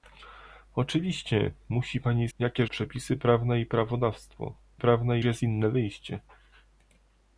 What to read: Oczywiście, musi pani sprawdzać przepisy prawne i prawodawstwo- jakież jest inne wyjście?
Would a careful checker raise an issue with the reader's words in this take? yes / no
yes